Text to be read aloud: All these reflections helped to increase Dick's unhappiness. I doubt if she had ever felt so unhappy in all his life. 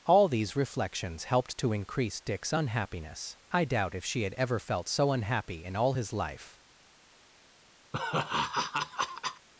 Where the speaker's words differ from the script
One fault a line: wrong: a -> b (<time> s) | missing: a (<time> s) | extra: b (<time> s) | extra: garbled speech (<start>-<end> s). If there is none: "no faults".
no faults